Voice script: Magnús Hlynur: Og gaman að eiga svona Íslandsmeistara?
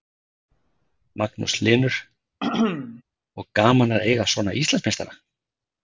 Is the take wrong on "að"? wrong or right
right